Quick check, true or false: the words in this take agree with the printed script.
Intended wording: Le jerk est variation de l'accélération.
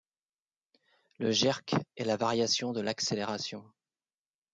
false